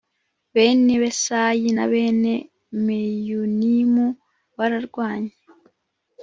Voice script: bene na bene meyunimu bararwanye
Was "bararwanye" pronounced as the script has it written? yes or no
yes